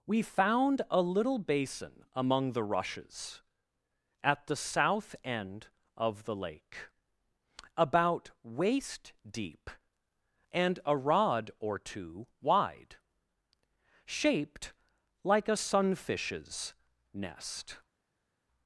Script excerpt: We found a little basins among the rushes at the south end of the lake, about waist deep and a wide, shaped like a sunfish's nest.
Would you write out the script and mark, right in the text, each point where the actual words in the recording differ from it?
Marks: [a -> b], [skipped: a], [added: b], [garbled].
We found a little [basins -> basin] among the rushes at the south end of the lake, about waist deep and a [added: rod or two] wide, shaped like a sunfish's nest.